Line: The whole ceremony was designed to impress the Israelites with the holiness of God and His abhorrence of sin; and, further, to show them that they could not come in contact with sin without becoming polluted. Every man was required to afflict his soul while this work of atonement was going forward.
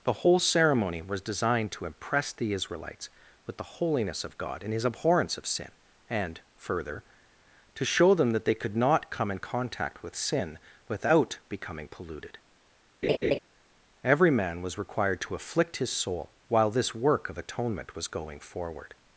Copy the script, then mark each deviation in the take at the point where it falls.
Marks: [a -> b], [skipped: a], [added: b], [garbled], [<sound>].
The whole ceremony was designed to impress the Israelites with the holiness of God and His abhorrence of sin; and, further, to show them that they could not come in contact with sin without becoming polluted. [laugh] Every man was required to afflict his soul while this work of atonement was going forward.